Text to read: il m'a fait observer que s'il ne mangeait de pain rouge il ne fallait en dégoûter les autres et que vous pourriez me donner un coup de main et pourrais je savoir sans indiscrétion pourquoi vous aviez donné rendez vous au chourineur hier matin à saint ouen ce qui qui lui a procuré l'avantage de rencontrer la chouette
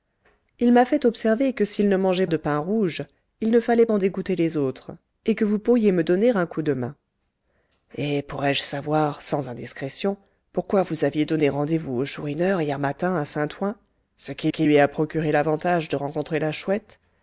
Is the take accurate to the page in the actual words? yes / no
yes